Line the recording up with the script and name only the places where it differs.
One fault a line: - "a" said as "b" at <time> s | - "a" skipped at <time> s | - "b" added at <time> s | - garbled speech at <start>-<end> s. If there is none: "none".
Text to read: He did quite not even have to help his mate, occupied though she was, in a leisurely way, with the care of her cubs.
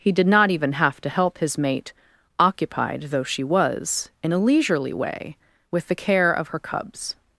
- "quite" skipped at 0.2 s